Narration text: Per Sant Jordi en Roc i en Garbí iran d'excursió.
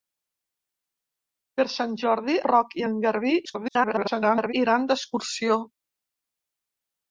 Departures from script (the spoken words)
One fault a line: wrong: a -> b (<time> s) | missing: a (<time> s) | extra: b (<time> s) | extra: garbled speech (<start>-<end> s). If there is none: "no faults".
missing: en (2.4 s)
extra: garbled speech (3.4-4.5 s)